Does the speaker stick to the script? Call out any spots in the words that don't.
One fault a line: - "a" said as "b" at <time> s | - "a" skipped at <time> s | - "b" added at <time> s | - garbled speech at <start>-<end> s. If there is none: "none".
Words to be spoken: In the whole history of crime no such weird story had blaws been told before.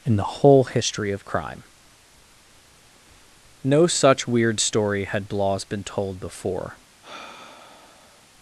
none